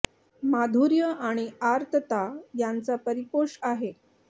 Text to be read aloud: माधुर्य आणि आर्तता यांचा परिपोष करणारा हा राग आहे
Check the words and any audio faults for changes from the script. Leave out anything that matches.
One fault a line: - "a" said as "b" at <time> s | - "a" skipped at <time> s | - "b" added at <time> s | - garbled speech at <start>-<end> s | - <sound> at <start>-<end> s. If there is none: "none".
- "करणारा हा राग" skipped at 3.6 s